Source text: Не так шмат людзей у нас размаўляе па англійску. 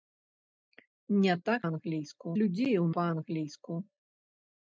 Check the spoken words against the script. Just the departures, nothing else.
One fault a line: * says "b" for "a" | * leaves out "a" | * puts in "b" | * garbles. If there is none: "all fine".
* says "англійску" for "шмат"
* leaves out "нас размаўляе"